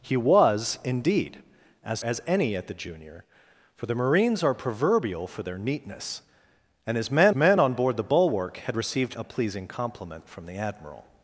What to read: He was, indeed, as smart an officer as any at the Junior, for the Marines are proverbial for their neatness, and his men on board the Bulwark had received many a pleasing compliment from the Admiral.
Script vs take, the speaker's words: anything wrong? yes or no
yes